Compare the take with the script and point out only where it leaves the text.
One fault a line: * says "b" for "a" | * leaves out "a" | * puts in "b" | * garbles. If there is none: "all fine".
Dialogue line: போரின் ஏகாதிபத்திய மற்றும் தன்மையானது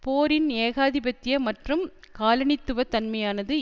* puts in "காலனித்துவ"